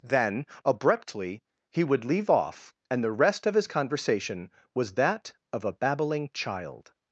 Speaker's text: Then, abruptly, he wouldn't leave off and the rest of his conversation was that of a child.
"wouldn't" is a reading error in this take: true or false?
true